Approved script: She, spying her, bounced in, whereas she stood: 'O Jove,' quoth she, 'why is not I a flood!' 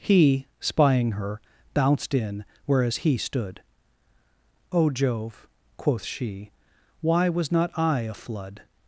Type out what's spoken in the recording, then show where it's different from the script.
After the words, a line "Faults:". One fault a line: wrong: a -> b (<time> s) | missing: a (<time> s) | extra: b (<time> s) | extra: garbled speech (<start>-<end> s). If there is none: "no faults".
He, spying her, bounced in, whereas he stood: 'O Jove,' quoth she, 'why was not I a flood!'
Faults:
wrong: She -> He (0.0 s)
wrong: she -> he (3.0 s)
wrong: is -> was (7.3 s)